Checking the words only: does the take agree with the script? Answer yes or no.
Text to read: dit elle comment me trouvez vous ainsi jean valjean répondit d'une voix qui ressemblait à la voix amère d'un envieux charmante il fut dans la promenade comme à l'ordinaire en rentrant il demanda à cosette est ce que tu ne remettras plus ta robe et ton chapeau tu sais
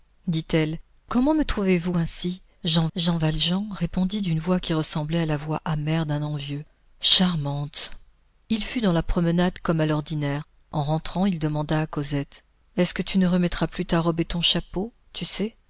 no